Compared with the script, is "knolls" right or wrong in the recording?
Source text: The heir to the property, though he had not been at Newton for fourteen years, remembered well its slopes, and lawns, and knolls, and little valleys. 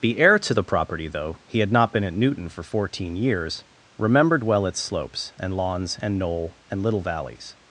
wrong